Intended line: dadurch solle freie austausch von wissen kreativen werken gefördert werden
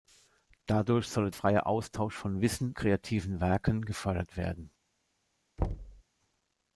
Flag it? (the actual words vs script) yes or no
no